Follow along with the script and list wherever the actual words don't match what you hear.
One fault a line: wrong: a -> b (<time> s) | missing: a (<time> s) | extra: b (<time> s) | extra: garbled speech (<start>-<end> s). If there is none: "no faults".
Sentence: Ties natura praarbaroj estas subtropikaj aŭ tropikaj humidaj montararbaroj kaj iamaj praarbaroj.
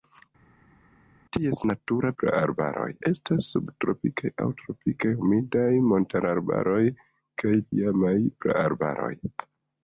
no faults